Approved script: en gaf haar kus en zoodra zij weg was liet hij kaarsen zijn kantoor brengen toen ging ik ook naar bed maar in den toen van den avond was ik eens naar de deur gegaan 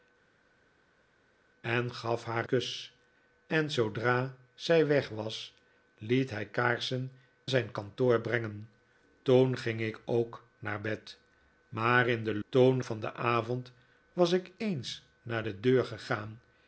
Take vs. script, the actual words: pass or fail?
pass